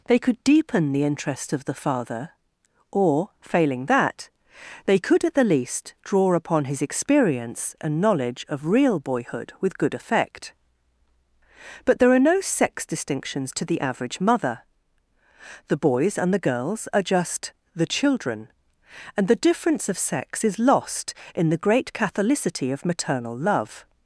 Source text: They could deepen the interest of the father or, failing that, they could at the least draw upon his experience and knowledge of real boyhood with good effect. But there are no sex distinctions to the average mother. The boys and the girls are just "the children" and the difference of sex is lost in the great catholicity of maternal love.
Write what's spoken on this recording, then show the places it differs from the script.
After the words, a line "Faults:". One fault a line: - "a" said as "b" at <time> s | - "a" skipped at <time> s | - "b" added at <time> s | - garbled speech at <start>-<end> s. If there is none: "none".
They could deepen the interest of the father or, failing that, they could at the least draw upon his experience and knowledge of real boyhood with good effect. But there are no sex distinctions to the average mother. The boys and the girls are just "the children" and the difference of sex is lost in the great catholicity of maternal love.
Faults:
none